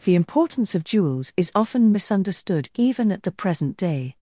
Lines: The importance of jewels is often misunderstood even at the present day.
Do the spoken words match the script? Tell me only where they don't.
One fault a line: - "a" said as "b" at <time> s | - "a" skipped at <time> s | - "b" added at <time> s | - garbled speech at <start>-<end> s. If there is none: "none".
none